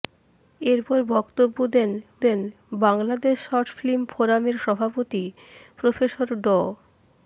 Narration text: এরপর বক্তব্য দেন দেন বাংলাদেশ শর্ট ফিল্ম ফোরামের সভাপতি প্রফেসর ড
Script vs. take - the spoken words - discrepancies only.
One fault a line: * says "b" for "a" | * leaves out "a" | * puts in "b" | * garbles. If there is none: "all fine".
all fine